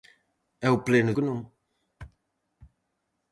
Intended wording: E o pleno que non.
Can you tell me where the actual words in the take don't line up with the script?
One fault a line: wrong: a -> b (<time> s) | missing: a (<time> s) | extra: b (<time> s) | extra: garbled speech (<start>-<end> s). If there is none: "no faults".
no faults